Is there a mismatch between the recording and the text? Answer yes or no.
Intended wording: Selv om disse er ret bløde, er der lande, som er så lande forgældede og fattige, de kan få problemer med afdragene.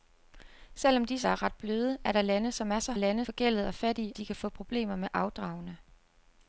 no